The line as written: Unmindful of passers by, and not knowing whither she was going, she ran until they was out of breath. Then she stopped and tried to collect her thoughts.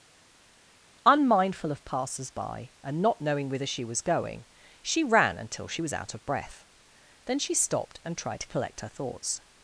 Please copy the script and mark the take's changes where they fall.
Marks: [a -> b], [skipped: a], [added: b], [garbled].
Unmindful of passers by, and not knowing whither she was going, she ran until [they -> she] was out of breath. Then she stopped and tried to collect her thoughts.